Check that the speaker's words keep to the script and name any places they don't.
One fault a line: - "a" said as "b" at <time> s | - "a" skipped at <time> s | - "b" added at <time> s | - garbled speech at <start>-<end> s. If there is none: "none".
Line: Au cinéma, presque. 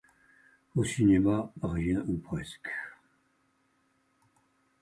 - "rien ou" added at 1.6 s